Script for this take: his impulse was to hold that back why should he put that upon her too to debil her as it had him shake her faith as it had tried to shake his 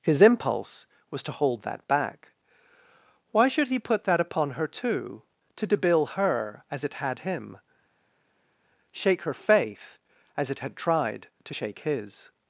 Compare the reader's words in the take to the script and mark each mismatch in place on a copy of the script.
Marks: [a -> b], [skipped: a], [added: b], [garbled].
his impulse was to hold that back why should he put that upon her too to debil her as it had him shake her faith as it had tried to shake his